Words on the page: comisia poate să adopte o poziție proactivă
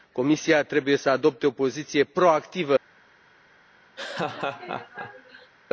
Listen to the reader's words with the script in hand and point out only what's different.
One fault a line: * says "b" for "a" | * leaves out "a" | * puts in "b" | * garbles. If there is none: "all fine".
* says "trebuie" for "poate"